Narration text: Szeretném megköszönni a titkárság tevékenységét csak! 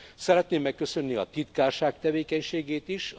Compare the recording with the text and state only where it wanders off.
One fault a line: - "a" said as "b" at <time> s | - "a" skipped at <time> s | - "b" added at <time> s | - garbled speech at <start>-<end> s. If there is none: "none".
- "csak" said as "is" at 2.9 s